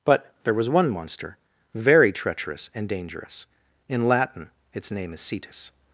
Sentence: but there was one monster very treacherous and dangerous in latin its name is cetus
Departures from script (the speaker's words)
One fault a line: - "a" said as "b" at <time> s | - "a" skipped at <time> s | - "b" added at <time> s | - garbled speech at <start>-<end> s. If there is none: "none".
none